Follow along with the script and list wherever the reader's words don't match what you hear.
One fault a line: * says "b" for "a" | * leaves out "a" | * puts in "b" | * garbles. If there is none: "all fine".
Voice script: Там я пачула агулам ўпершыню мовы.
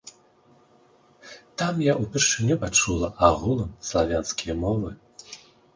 * puts in "ўпершыню"
* says "славянскія" for "ўпершыню"